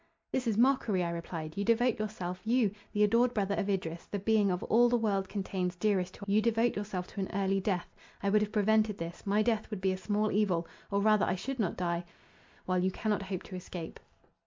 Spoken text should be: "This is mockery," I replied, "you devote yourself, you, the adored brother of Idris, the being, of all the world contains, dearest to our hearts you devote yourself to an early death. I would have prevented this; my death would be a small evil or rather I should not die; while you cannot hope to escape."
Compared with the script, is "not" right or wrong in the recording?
right